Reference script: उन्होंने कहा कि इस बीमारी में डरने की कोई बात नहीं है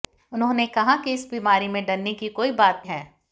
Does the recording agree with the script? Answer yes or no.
no